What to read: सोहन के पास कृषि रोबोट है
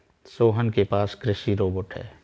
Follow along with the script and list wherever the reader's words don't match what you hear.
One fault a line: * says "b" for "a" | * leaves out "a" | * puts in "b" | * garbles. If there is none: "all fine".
all fine